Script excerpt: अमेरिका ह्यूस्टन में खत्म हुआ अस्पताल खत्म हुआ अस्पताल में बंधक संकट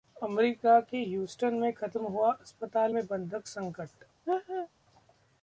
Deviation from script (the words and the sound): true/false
true